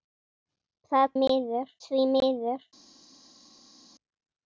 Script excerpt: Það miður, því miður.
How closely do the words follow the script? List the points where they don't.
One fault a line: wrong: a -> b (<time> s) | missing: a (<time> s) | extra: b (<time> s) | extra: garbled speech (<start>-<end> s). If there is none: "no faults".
no faults